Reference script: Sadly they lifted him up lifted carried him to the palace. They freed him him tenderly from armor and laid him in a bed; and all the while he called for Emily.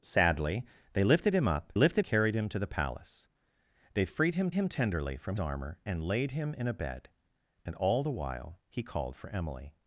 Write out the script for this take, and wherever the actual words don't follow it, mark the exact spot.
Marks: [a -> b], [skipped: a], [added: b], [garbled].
Sadly they lifted him up lifted carried him to the palace. They freed him him tenderly from armor and laid him in a bed; and all the while he called for Emily.